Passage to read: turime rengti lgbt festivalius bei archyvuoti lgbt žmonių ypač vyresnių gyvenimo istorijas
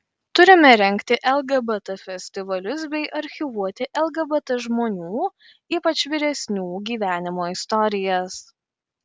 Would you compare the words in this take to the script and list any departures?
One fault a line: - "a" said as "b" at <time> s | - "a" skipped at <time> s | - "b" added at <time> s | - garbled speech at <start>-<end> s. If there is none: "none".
none